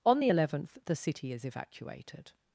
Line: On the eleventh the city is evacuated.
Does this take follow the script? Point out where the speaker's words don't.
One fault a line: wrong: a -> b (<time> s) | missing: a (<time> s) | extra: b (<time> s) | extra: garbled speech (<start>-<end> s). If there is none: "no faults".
no faults